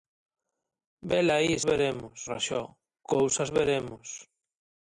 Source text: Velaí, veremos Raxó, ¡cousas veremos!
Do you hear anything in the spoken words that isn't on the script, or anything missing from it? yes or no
no